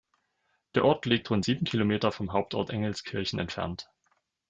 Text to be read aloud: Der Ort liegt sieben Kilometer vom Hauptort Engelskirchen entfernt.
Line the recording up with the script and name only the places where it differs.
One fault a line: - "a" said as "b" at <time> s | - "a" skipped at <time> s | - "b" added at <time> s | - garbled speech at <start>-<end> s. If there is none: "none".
- "rund" added at 1.3 s